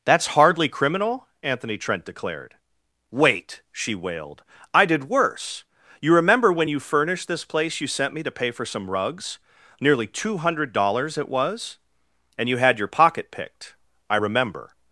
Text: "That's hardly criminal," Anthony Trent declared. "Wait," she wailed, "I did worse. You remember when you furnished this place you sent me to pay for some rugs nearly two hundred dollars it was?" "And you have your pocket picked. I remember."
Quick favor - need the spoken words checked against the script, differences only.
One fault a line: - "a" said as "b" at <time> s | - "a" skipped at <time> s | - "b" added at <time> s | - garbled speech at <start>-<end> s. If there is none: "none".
- "have" said as "had" at 12.6 s